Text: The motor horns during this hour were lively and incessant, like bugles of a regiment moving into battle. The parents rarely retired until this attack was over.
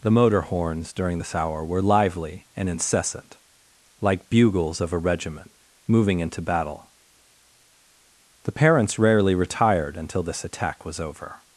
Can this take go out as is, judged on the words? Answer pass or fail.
pass